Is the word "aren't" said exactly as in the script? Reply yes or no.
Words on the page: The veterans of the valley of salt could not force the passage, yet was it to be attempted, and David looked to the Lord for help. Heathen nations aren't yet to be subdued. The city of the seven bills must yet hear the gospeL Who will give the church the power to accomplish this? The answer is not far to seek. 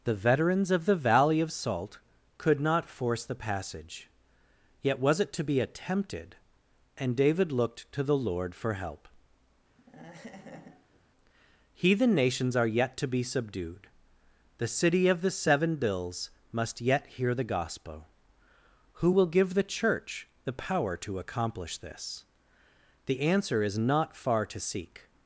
no